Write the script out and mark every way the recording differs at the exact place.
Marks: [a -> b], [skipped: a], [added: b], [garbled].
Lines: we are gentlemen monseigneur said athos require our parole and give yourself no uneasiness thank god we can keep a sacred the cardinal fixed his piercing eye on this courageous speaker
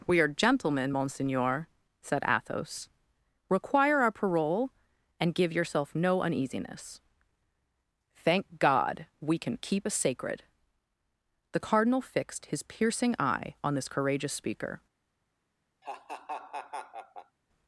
we are gentlemen monseigneur said athos require our parole and give yourself no uneasiness thank god we can keep a sacred the cardinal fixed his piercing eye on this courageous speaker